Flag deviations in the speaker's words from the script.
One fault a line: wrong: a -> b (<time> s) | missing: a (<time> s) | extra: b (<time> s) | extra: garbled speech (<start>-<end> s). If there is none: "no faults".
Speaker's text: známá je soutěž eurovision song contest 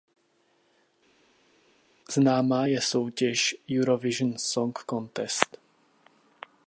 no faults